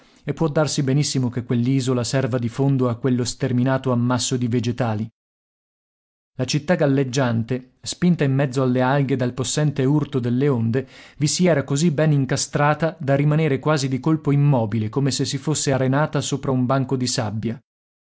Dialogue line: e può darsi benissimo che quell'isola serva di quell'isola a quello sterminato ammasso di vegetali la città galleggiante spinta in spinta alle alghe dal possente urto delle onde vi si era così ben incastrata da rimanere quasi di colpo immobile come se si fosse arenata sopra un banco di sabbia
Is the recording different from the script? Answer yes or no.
yes